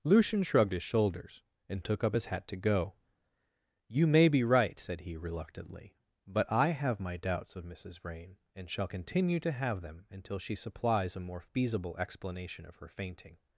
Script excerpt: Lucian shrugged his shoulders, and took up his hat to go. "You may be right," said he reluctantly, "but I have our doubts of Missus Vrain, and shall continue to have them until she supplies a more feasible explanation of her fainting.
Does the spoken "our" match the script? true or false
false